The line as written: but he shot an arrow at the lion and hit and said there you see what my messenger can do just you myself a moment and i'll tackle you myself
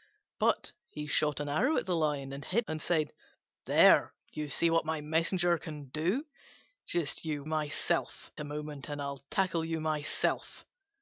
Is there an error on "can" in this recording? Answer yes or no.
no